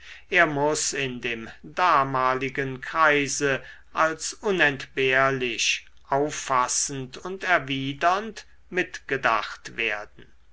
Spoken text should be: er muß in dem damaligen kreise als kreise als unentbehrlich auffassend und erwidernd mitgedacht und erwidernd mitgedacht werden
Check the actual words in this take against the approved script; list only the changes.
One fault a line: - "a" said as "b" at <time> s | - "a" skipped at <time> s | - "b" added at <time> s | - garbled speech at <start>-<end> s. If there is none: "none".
- "kreise als" skipped at 4.3 s
- "und erwidernd mitgedacht" skipped at 9.7 s